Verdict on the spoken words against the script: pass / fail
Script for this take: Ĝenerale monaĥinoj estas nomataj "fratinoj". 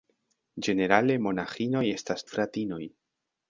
fail